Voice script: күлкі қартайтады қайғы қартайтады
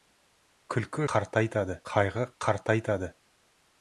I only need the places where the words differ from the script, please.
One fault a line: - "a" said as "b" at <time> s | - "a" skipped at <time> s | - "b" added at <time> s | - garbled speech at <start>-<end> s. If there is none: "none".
none